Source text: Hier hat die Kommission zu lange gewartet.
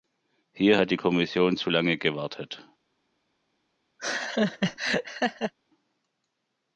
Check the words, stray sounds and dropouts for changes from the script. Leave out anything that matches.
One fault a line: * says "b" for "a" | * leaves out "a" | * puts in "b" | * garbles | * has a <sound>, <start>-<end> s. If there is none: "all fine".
* has a laugh, 4.0-5.5 s